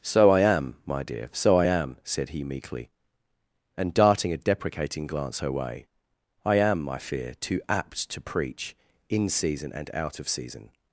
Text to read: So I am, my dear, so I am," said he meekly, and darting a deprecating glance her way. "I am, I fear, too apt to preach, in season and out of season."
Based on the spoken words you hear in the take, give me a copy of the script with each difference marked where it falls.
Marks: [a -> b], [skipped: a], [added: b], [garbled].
So I am, my dear, so I am," said he meekly, and darting a deprecating glance her way. "I am, I fear, too apt to preach, in season and out of season."